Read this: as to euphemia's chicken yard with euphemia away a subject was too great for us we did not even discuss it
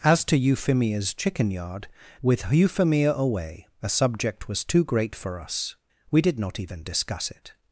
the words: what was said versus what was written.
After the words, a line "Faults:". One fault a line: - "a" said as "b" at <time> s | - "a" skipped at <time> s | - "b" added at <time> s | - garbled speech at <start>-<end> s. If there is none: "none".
as to euphemia's chicken yard with euphemia away a subject was too great for us we did not even discuss it
Faults:
none